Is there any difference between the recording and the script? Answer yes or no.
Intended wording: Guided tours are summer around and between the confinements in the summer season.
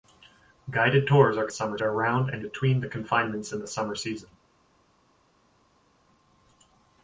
no